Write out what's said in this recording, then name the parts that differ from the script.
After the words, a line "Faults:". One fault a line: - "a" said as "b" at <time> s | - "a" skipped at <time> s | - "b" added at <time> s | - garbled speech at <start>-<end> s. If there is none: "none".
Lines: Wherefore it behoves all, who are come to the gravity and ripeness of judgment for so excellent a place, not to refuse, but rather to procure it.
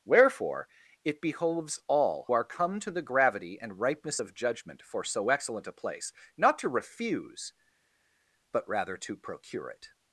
Wherefore it behoves all, are come to the gravity and ripeness of judgment for so excellent a place, not to refuse, but rather to procure it.
Faults:
- "who" skipped at 2.3 s